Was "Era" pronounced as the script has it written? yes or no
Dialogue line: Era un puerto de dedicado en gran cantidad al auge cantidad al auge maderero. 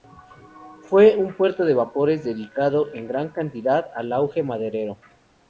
no